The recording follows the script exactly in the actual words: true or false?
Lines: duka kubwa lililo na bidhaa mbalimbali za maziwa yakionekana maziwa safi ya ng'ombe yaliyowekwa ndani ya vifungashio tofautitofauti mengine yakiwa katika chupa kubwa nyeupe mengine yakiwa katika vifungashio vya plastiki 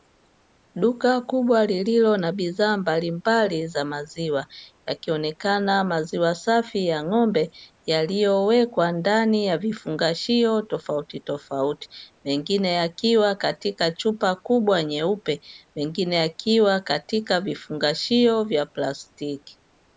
true